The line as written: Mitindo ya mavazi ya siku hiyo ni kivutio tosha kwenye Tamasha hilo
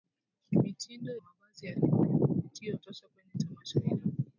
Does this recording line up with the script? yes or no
no